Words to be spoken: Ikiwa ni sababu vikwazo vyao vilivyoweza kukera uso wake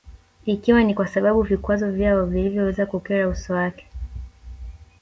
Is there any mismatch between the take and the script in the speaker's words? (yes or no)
yes